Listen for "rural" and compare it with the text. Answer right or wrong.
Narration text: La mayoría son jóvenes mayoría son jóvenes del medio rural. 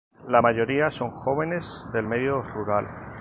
right